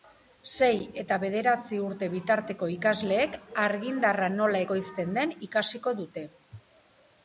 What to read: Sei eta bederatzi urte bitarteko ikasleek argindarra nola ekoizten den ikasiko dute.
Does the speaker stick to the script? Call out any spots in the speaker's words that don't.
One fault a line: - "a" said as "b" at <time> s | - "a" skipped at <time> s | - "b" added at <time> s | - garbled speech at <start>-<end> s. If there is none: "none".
none